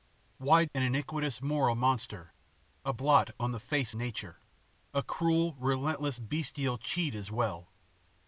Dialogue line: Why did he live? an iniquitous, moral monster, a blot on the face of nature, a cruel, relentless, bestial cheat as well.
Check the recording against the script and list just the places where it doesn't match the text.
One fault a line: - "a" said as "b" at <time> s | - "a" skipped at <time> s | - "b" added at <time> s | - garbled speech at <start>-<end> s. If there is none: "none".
- "did he live" skipped at 0.7 s
- "of" skipped at 3.9 s